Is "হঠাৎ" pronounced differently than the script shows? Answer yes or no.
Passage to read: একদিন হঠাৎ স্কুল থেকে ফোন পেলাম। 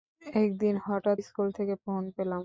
no